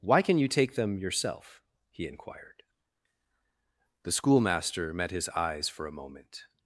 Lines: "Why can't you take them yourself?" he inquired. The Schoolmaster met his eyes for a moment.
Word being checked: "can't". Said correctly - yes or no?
no